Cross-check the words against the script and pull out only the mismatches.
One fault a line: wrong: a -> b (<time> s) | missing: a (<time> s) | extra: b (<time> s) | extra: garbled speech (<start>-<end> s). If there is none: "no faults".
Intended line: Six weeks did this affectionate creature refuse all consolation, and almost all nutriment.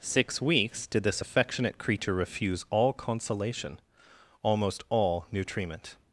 missing: and (3.8 s)